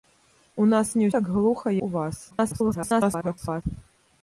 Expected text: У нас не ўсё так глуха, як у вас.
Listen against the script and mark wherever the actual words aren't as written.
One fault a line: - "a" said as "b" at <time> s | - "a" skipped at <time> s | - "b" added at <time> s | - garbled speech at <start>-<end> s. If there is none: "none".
- "ўсё" skipped at 1.1 s
- "як" skipped at 1.7 s
- garbled speech at 2.3-3.6 s